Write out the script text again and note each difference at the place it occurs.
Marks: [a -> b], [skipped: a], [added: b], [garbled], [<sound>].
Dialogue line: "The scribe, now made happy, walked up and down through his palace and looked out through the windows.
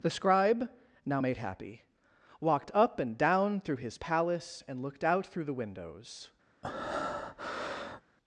"The scribe, now made happy, walked up and down through his palace and looked out through the windows. [breath]